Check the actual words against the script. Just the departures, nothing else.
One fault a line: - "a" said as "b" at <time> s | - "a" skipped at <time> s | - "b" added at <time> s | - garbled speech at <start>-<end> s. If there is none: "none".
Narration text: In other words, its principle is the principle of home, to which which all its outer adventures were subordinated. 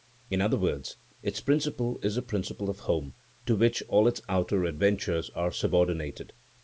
- "which" skipped at 3.8 s
- "were" said as "are" at 5.3 s